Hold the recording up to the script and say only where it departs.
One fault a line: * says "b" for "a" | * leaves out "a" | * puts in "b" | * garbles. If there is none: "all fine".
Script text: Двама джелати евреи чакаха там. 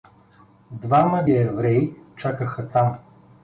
* leaves out "джелати"